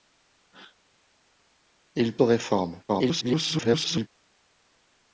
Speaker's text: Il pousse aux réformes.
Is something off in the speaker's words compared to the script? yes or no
yes